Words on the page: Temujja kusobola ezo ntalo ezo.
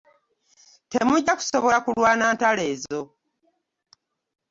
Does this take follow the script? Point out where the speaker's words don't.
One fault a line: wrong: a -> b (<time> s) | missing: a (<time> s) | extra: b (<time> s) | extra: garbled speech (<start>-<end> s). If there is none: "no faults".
wrong: ezo -> kulwana (1.9 s)